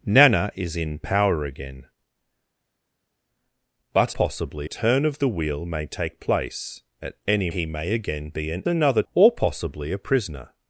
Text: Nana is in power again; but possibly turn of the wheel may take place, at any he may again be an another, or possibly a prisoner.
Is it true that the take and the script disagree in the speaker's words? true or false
false